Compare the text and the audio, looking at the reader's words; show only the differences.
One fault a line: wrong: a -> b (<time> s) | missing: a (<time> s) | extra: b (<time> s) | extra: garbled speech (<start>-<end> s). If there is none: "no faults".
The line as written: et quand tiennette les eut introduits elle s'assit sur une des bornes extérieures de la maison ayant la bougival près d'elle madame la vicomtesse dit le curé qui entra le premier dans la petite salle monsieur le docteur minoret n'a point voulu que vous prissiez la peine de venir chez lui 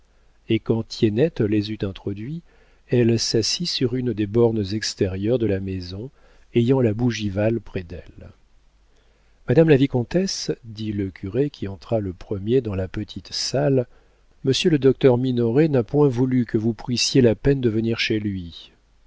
no faults